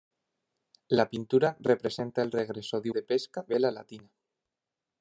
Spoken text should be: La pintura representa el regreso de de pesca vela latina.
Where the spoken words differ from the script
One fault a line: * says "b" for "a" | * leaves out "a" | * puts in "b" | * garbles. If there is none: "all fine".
all fine